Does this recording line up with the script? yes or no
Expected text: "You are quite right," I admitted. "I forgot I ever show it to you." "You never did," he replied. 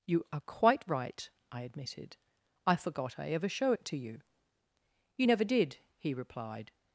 yes